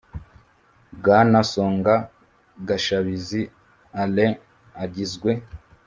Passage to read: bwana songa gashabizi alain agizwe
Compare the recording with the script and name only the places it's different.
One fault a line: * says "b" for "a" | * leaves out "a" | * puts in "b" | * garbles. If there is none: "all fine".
all fine